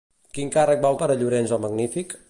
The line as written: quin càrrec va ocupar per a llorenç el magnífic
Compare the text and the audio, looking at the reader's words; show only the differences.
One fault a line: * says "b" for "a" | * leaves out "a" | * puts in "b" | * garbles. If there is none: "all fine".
* leaves out "ocupar"